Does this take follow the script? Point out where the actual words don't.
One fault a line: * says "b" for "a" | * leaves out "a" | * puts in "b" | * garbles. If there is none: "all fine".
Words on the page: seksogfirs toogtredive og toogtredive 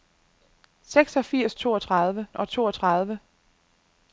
all fine